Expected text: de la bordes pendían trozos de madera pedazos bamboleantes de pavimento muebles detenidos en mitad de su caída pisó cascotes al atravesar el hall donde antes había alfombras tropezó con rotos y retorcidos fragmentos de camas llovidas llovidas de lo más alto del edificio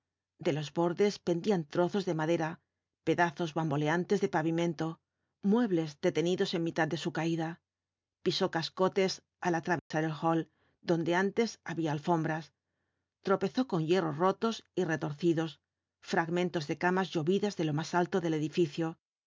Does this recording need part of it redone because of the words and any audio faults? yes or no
yes